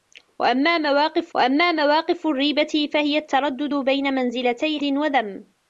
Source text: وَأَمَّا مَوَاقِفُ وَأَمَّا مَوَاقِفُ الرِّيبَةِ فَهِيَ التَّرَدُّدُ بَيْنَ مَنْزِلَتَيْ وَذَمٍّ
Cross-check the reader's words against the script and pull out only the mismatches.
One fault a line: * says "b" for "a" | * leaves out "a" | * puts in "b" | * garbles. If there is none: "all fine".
all fine